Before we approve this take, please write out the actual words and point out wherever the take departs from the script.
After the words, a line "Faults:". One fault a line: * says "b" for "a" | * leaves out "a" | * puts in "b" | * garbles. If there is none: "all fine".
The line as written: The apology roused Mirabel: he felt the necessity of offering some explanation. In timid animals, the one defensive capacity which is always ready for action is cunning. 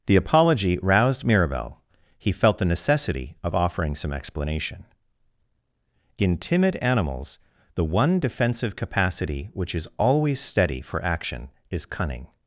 The apology roused Mirabel: he felt the necessity of offering some explanation. In timid animals, the one defensive capacity which is always steady for action is cunning.
Faults:
* says "steady" for "ready"